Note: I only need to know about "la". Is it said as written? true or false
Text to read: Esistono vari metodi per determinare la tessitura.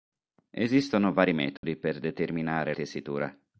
false